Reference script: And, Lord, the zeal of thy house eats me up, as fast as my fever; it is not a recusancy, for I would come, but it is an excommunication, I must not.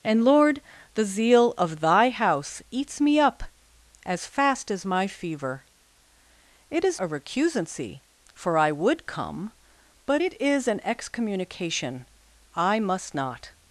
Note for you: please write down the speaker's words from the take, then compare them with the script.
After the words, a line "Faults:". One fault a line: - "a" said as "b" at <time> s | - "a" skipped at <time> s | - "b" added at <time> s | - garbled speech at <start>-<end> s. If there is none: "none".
And, Lord, the zeal of thy house eats me up, as fast as my fever; it is a recusancy, for I would come, but it is an excommunication, I must not.
Faults:
- "not" skipped at 7.0 s